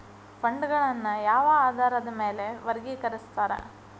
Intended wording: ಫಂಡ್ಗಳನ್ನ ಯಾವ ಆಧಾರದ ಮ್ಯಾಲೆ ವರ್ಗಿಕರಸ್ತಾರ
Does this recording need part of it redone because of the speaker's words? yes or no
no